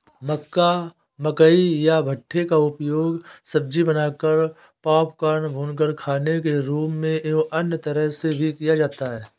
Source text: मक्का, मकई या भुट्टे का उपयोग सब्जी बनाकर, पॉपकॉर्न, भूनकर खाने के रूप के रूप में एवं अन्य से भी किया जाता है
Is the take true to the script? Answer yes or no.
no